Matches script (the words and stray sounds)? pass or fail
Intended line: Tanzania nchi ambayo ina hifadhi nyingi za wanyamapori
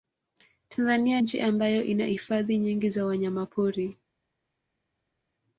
pass